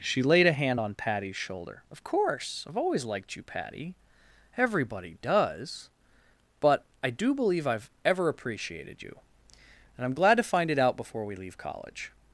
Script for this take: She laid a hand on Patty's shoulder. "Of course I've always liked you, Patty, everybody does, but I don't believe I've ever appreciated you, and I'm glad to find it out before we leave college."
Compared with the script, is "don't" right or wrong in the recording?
wrong